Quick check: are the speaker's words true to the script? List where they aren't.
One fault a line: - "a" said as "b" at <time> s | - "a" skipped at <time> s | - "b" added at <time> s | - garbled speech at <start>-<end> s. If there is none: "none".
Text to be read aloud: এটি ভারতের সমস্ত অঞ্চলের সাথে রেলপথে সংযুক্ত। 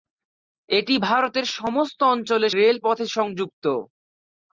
- "সাথে" skipped at 2.5 s